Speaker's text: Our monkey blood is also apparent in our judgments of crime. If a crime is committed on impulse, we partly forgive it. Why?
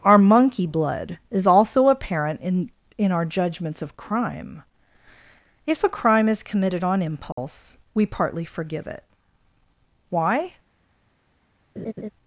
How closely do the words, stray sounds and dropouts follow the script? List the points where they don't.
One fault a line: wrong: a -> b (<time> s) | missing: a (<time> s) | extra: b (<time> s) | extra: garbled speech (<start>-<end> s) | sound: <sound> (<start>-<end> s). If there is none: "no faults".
extra: in (3.0 s)
sound: dropout (7.3-7.4 s)
sound: laugh (11.8-12.1 s)